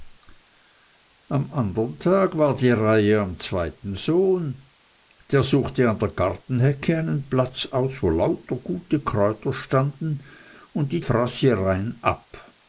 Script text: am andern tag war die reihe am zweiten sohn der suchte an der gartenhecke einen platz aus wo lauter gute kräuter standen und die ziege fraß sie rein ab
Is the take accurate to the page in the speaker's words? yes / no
no